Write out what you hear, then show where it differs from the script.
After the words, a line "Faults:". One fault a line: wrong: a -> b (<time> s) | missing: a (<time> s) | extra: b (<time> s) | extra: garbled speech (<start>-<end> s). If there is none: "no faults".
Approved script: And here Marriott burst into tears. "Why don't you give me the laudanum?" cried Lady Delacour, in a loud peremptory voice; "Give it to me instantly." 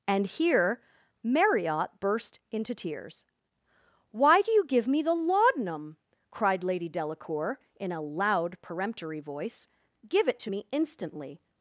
And here Marriott burst into tears. "Why do you give me the laudanum?" cried Lady Delacour, in a loud peremptory voice; "Give it to me instantly."
Faults:
wrong: don't -> do (4.4 s)